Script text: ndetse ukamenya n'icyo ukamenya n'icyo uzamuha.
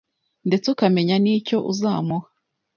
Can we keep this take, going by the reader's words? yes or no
no